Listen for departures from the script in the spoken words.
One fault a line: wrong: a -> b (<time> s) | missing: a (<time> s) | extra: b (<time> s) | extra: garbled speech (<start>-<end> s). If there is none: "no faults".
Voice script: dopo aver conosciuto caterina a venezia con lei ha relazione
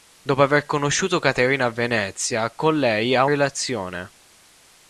no faults